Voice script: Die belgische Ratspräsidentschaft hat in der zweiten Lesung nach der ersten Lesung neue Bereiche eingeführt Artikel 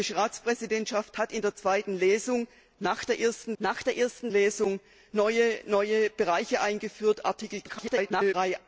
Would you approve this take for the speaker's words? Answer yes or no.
no